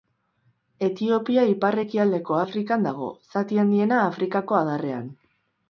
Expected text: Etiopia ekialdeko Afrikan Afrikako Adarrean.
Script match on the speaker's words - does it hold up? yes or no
no